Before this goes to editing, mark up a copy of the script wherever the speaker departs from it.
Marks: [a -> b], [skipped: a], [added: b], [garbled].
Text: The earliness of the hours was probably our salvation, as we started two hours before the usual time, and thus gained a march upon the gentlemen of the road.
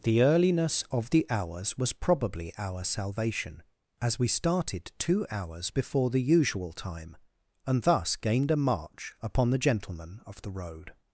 The earliness of the hours was probably our salvation, as we started two hours before the usual time, and thus gained a march upon the gentlemen of the road.